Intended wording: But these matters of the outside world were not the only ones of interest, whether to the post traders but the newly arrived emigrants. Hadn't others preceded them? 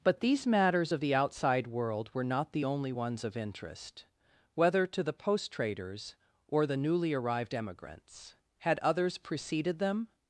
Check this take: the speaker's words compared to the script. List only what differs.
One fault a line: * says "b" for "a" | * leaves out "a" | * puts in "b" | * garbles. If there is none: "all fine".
* says "or" for "but"
* says "Had" for "Hadn't"